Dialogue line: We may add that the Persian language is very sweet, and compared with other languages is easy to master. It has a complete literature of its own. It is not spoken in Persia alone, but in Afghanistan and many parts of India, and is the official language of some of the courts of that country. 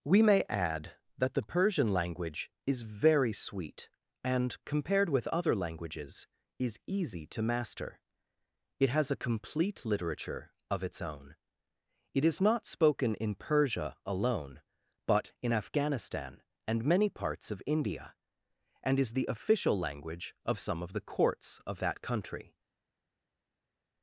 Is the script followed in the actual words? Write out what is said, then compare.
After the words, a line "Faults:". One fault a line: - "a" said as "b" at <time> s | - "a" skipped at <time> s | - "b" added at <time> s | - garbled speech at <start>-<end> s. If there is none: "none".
We may add that the Persian language is very sweet, and compared with other languages is easy to master. It has a complete literature of its own. It is not spoken in Persia alone, but in Afghanistan and many parts of India, and is the official language of some of the courts of that country.
Faults:
none